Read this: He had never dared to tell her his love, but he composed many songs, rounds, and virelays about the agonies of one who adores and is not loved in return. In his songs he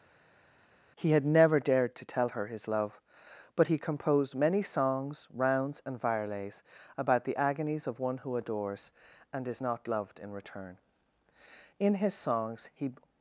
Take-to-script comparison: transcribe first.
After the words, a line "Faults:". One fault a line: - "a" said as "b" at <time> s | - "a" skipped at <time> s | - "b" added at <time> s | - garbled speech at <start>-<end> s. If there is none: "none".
He had never dared to tell her his love, but he composed many songs, rounds, and virelays about the agonies of one who adores and is not loved in return. In his songs he
Faults:
none